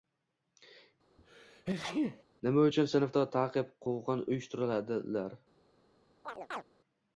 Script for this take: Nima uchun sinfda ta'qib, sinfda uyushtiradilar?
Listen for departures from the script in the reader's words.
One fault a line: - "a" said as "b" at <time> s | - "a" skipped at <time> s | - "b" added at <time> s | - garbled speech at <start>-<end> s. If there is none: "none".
- "sinfda" said as "quvg‘in" at 3.9 s